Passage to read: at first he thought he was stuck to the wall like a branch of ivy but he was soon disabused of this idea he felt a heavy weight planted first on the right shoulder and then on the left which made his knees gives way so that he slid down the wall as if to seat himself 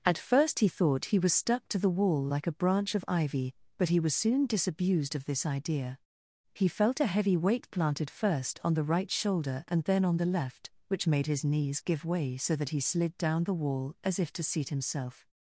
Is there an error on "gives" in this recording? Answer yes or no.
yes